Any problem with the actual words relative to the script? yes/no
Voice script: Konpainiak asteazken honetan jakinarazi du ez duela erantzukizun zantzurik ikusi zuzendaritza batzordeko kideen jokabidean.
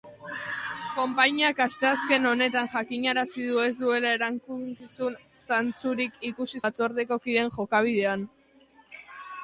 yes